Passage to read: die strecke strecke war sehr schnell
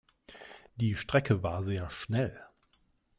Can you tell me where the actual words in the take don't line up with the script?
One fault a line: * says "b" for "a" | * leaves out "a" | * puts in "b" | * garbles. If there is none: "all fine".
* leaves out "strecke"